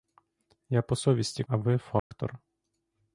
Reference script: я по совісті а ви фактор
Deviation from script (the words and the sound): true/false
true